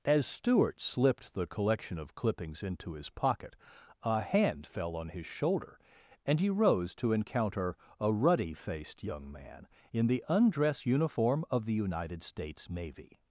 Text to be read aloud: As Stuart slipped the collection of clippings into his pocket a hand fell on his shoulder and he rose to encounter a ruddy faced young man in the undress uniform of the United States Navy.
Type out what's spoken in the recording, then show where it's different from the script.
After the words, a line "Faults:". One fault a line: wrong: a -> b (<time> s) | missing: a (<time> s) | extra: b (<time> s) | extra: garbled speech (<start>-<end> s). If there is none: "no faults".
As Stuart slipped the collection of clippings into his pocket a hand fell on his shoulder and he rose to encounter a ruddy faced young man in the undress uniform of the United States Navy.
Faults:
no faults